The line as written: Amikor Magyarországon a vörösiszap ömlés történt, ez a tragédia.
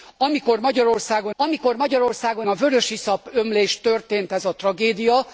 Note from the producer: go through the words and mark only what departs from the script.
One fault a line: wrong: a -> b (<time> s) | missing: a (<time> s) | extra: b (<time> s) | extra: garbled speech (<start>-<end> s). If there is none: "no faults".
extra: amikor Magyarországon (1.4 s)